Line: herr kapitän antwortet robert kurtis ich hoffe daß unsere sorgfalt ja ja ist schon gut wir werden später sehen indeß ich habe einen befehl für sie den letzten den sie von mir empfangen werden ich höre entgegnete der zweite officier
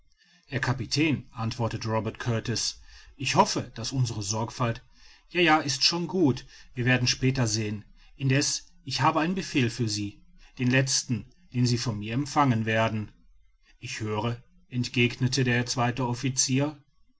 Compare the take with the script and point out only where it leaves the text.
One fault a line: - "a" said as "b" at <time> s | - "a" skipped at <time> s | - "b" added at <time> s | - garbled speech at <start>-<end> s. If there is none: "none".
none